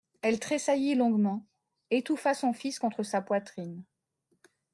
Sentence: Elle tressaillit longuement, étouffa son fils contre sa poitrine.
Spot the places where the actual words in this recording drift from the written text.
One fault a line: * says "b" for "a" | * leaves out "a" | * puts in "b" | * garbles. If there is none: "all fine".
all fine